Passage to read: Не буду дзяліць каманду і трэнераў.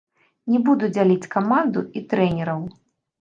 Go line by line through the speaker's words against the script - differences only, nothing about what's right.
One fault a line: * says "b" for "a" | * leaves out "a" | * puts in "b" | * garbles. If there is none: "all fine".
all fine